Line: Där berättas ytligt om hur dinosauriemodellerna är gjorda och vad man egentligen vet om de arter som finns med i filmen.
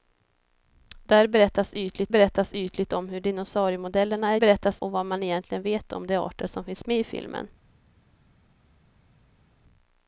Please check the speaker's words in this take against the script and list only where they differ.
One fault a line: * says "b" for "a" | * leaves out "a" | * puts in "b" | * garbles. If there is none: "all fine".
* puts in "berättas ytligt"
* says "berättas" for "gjorda"